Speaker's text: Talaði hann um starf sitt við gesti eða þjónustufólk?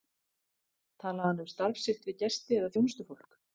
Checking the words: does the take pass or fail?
pass